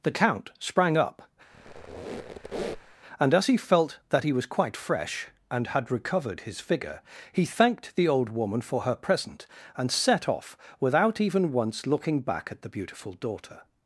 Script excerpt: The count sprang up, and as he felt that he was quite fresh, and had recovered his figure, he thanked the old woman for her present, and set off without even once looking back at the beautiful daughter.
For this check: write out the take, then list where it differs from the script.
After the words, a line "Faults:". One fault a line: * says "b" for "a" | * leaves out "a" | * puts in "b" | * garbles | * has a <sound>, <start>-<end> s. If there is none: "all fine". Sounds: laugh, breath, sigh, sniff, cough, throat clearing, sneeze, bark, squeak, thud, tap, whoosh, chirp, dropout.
The count sprang up, and as he felt that he was quite fresh, and had recovered his figure, he thanked the old woman for her present, and set off without even once looking back at the beautiful daughter.
Faults:
* has a squeak, 1.5-3.0 s